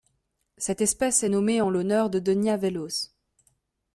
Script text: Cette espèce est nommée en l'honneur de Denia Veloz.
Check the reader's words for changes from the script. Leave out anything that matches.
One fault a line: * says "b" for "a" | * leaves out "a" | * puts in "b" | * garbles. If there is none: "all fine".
all fine